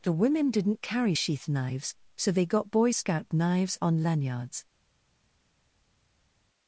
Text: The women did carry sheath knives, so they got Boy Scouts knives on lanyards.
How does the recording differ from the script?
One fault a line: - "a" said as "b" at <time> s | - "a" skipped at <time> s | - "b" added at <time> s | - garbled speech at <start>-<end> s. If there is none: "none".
- "did" said as "didn't" at 0.5 s
- "Scouts" said as "Scout" at 2.9 s